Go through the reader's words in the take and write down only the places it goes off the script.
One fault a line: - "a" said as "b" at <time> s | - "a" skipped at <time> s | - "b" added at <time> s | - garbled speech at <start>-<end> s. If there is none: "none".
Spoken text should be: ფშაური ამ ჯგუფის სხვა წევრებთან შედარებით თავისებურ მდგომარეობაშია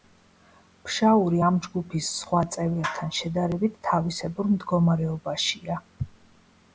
none